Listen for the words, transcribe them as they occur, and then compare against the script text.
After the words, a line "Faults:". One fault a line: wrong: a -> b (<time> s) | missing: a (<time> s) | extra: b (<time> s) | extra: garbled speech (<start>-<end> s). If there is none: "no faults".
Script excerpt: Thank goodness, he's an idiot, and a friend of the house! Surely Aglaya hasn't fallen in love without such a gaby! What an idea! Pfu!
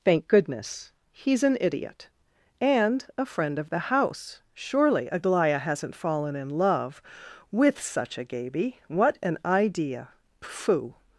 Thank goodness, he's an idiot, and a friend of the house! Surely Aglaya hasn't fallen in love with such a gaby! What an idea! Pfu!
Faults:
wrong: without -> with (7.5 s)